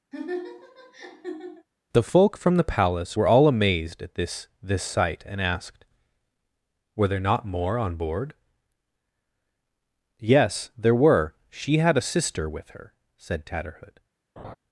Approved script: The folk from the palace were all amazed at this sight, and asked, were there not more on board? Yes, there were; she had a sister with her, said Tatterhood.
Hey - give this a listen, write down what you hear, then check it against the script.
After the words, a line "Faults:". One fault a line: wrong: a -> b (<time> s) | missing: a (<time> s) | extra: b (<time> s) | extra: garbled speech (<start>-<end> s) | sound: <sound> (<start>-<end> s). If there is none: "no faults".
The folk from the palace were all amazed at this this sight, and asked, were there not more on board? Yes, there were; she had a sister with her, said Tatterhood.
Faults:
sound: laugh (0.1-1.7 s)
extra: this (4.6 s)
sound: laugh (14.4-14.5 s)